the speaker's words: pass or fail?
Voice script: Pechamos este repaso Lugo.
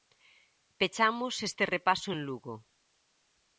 fail